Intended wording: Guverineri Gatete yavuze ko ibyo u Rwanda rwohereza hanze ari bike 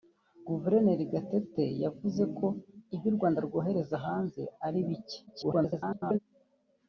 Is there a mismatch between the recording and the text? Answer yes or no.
yes